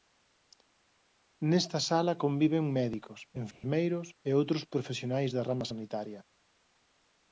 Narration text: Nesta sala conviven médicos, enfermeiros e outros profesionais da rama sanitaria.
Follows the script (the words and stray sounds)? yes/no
no